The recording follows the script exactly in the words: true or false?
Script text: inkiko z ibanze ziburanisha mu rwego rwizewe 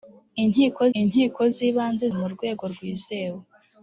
false